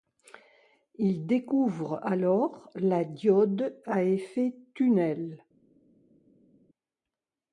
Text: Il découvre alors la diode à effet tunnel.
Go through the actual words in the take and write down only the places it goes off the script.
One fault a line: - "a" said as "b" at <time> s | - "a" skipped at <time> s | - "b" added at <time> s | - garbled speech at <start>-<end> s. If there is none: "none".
none